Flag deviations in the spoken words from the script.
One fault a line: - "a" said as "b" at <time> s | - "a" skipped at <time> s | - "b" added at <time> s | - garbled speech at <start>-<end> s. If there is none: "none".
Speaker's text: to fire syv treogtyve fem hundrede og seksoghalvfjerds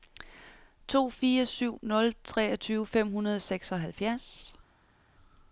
- "nul" added at 1.8 s